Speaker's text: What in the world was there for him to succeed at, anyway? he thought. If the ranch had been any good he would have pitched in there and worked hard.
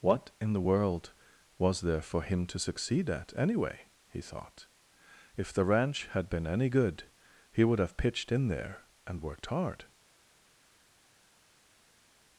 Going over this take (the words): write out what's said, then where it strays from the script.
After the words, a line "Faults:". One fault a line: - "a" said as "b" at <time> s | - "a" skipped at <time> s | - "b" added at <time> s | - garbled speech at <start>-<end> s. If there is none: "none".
What in the world was there for him to succeed at, anyway? he thought. If the ranch had been any good he would have pitched in there and worked hard.
Faults:
none